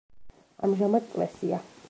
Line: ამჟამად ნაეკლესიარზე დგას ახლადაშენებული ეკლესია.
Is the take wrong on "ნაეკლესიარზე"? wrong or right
wrong